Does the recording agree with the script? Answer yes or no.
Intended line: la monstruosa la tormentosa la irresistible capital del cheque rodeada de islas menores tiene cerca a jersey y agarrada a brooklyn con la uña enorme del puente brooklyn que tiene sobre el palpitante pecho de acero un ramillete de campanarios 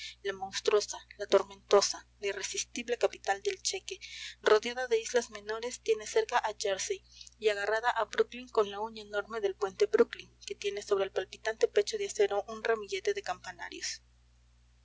yes